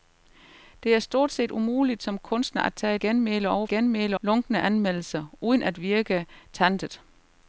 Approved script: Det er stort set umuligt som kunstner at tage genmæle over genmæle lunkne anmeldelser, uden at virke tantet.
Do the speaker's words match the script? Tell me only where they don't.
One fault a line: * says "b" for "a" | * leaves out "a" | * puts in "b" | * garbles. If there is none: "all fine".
all fine